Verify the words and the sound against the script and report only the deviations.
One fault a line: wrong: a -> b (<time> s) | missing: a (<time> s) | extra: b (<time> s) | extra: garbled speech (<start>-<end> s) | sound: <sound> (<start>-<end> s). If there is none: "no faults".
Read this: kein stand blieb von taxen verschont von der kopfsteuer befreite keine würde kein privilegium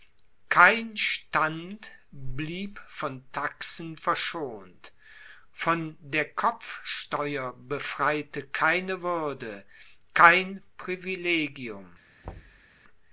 sound: thud (12.2-12.7 s)